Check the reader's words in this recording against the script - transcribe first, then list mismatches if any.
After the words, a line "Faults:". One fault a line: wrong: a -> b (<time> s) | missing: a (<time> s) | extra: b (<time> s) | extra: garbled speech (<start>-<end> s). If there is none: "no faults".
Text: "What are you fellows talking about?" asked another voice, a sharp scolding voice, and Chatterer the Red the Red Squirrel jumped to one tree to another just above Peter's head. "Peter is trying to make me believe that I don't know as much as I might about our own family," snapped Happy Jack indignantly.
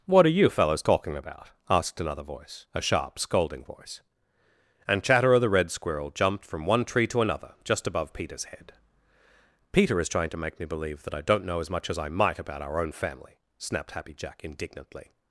"What are you fellows talking about?" asked another voice, a sharp scolding voice, and Chatterer the Red Squirrel jumped from one tree to another just above Peter's head. "Peter is trying to make me believe that I don't know as much as I might about our own family," snapped Happy Jack indignantly.
Faults:
missing: the Red (5.7 s)
wrong: to -> from (6.4 s)